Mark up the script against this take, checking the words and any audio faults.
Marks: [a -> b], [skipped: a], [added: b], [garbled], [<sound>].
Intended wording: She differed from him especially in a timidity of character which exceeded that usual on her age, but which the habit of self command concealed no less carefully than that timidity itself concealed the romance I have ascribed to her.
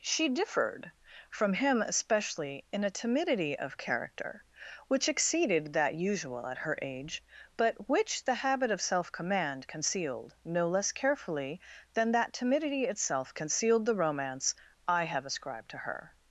She differed from him especially in a timidity of character which exceeded that usual [on -> at] her age, but which the habit of self command concealed no less carefully than that timidity itself concealed the romance I have ascribed to her.